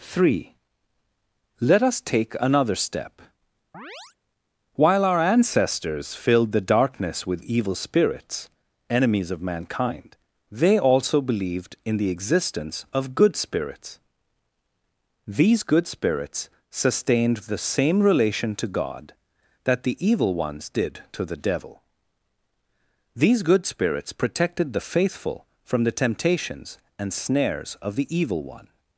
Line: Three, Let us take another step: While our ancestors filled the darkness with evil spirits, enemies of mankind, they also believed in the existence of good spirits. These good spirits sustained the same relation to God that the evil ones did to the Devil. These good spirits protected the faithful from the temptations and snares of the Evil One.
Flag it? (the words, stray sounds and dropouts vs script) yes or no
yes